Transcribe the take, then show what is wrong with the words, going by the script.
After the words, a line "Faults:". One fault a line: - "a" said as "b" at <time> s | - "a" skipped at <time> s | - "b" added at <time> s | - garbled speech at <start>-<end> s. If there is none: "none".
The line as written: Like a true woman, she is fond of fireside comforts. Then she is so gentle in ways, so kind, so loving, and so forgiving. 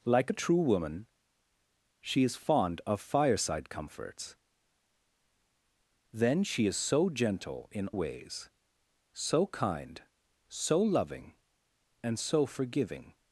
Like a true woman, she is fond of fireside comforts. Then she is so gentle in ways, so kind, so loving, and so forgiving.
Faults:
none